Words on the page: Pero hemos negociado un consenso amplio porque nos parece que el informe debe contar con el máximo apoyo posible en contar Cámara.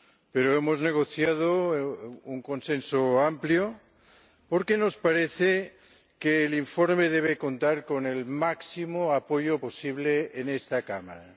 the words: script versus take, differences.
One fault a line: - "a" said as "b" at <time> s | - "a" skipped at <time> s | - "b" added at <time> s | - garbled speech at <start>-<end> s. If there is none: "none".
- "contar" said as "esta" at 10.5 s